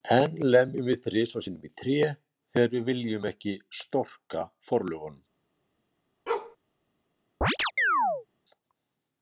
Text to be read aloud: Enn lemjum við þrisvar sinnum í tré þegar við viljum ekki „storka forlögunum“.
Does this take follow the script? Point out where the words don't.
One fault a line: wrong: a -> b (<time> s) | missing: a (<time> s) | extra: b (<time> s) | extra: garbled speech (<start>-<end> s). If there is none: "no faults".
no faults